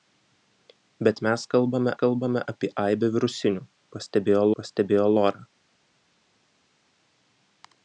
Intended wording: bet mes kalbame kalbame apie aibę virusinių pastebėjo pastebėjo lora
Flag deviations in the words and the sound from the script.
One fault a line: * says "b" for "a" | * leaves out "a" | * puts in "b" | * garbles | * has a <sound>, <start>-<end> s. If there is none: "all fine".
all fine